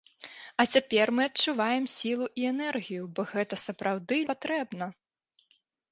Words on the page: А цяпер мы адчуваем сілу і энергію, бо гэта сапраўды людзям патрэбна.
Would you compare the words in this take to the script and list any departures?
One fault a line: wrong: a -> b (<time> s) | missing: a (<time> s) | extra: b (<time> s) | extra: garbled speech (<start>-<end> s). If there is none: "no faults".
missing: людзям (4.2 s)